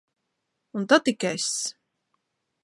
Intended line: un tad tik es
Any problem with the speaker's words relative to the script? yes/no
no